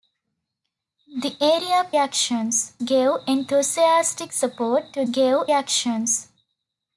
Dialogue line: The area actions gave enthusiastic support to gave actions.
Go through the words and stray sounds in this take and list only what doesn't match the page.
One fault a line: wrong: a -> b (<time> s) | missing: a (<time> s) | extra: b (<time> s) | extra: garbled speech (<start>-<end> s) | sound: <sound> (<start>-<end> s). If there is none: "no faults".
no faults